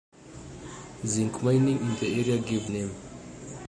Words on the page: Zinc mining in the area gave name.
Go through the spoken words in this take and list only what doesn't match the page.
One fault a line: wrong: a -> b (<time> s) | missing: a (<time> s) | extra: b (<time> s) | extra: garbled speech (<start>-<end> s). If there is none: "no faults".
no faults